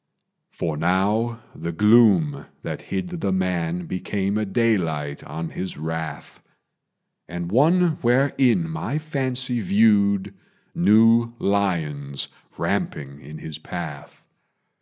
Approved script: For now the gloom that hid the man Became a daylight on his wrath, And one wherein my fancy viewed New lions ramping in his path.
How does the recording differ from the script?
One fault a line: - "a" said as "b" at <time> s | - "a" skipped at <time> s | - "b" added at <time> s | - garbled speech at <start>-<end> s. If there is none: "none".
none